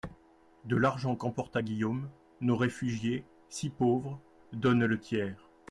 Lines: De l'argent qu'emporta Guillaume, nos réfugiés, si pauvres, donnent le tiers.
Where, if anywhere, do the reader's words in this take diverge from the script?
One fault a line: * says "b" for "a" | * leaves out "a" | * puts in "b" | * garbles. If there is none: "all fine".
all fine